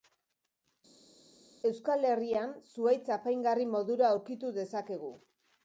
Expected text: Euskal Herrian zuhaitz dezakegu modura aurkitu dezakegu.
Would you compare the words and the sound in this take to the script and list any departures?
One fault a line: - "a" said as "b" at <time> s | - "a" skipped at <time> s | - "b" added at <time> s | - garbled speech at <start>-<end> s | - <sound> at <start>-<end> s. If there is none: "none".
- "dezakegu" said as "apaingarri" at 3.2 s